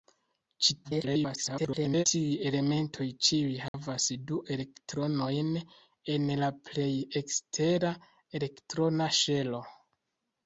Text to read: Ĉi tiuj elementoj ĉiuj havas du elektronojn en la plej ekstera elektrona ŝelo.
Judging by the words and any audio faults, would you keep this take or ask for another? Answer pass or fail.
fail